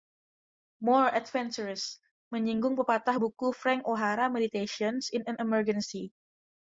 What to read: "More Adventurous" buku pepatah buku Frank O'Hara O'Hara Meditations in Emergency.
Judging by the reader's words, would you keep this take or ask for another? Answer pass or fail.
fail